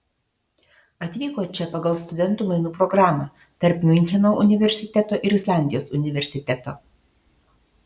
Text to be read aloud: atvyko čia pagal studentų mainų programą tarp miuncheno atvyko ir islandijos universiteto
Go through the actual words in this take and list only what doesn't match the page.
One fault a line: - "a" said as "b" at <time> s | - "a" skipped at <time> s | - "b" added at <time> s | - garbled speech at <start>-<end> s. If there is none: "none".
- "atvyko" said as "universiteto" at 4.5 s